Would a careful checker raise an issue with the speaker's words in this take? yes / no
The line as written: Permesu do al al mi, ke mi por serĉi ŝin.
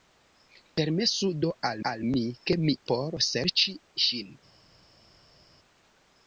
no